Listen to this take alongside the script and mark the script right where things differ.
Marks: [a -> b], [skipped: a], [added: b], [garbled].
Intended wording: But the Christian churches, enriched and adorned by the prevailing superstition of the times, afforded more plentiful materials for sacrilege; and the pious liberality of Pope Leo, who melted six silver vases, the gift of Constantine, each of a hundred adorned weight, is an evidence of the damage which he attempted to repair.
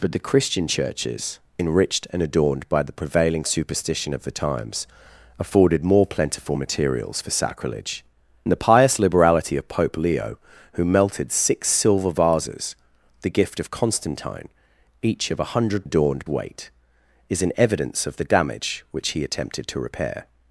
But the Christian churches, enriched and adorned by the prevailing superstition of the times, afforded more plentiful materials for sacrilege; and the pious liberality of Pope Leo, who melted six silver vases, the gift of Constantine, each of a hundred adorned weight, is an evidence of the damage which he attempted to repair.